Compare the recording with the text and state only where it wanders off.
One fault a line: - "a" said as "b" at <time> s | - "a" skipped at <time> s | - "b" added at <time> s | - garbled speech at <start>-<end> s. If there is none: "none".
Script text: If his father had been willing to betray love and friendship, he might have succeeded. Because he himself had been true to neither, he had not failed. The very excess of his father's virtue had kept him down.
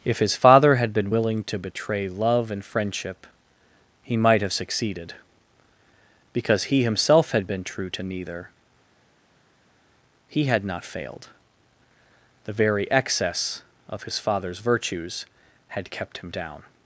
- "virtue" said as "virtues" at 14.6 s